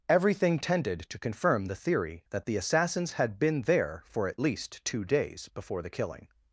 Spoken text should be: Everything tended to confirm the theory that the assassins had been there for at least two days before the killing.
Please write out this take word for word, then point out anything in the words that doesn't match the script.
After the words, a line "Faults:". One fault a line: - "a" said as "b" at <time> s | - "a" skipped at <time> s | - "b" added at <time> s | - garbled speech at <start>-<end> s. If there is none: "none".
Everything tended to confirm the theory that the assassins had been there for at least two days before the killing.
Faults:
none